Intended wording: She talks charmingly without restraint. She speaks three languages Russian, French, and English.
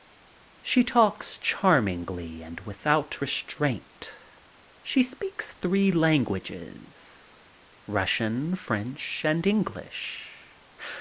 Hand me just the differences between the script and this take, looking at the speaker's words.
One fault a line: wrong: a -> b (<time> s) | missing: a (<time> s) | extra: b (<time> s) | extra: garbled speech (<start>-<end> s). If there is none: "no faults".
extra: and (2.4 s)